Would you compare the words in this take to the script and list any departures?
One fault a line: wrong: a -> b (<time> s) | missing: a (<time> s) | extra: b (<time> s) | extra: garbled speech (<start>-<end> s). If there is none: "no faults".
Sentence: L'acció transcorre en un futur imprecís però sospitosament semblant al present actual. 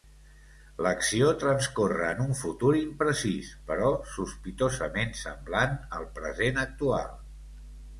no faults